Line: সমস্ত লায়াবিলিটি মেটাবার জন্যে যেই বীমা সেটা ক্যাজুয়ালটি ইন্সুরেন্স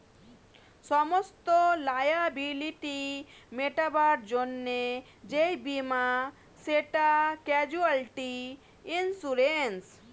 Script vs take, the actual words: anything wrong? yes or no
no